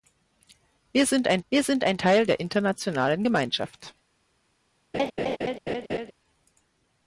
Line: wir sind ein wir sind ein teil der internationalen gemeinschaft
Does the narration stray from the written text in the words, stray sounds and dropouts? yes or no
yes